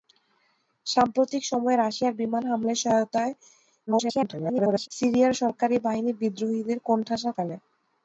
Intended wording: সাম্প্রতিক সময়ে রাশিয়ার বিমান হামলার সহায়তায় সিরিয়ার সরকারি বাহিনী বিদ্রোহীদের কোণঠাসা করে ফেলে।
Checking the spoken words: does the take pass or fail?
fail